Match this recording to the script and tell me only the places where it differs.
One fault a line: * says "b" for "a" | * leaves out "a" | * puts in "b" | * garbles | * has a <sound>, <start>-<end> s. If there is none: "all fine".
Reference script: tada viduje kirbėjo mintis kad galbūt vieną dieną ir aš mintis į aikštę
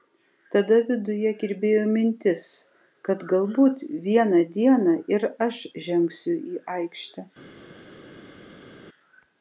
* says "žengsiu" for "mintis"